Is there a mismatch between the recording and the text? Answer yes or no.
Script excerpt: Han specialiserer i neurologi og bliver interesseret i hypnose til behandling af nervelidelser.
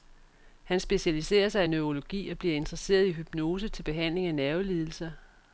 yes